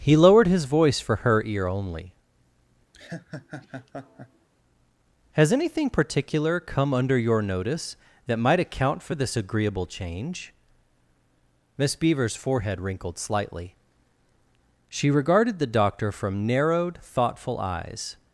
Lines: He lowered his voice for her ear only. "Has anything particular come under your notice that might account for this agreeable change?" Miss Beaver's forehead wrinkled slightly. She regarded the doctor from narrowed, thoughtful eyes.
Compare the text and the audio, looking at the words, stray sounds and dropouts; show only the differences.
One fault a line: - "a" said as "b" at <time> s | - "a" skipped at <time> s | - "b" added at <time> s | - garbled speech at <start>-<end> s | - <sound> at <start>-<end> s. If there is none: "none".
- laugh at 2.9-4.5 s